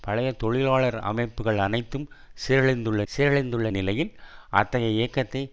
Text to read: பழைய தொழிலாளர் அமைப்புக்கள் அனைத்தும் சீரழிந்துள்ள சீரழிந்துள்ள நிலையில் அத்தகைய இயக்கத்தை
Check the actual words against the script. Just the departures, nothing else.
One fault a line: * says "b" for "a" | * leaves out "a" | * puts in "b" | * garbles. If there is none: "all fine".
all fine